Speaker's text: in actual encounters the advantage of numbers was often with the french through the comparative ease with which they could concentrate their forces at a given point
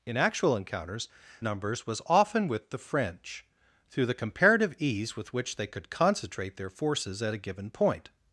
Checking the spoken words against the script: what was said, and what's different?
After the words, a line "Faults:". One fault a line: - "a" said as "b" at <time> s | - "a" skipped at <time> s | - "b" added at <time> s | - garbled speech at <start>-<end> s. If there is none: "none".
in actual encounters numbers was often with the french through the comparative ease with which they could concentrate their forces at a given point
Faults:
- "the advantage of" skipped at 1.1 s